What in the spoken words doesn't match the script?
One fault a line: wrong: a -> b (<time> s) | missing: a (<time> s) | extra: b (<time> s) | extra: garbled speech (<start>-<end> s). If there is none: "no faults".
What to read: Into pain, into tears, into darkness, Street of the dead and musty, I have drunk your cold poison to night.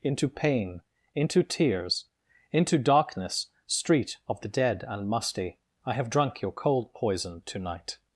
no faults